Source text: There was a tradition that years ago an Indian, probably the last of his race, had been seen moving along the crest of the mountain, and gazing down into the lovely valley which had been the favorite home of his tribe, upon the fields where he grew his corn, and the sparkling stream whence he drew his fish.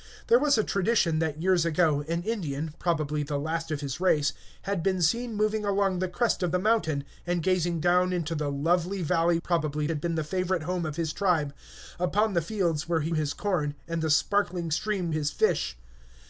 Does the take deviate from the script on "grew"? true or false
true